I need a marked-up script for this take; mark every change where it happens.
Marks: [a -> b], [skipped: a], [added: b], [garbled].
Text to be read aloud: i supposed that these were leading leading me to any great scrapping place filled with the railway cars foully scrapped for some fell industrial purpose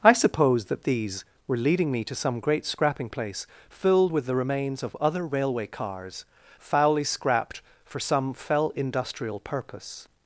i supposed that these were leading [skipped: leading] me to [any -> some] great scrapping place filled with the [added: remains of other] railway cars foully scrapped for some fell industrial purpose